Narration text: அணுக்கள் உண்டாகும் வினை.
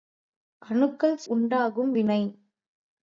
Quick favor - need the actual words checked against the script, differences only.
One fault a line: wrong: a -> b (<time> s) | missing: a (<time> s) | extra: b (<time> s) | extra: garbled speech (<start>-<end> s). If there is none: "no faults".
no faults